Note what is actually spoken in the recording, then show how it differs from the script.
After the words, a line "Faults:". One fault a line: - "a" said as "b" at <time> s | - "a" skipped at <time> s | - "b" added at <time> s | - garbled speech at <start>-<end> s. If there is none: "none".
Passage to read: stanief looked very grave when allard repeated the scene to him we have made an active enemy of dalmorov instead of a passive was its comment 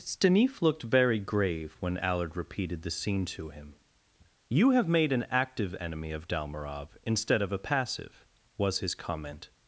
stanief looked very grave when allard repeated the scene to him you have made an active enemy of dalmorov instead of a passive was his comment
Faults:
- "we" said as "you" at 4.5 s
- "its" said as "his" at 8.8 s